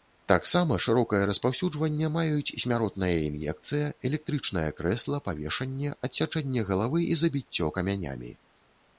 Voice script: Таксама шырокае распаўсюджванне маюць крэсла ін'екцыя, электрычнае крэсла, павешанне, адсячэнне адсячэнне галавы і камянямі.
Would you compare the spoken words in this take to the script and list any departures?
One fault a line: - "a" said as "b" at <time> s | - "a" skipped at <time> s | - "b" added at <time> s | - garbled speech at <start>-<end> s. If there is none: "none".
- "крэсла" said as "смяротная" at 2.6 s
- "адсячэнне" skipped at 6.7 s
- "забіццё" added at 7.3 s